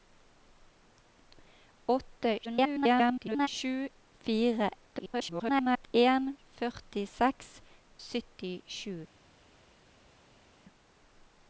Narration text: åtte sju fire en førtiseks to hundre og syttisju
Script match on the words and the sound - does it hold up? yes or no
no